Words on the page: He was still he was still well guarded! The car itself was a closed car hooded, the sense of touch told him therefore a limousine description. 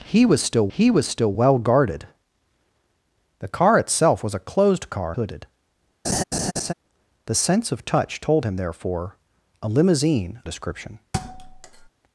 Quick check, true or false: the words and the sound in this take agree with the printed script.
false